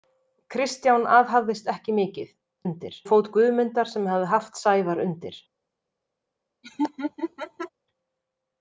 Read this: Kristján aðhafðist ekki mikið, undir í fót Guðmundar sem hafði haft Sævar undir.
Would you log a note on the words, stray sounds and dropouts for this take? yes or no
yes